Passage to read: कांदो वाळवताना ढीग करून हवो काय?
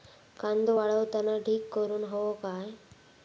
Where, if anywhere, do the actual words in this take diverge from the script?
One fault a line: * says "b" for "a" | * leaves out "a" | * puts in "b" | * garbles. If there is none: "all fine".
all fine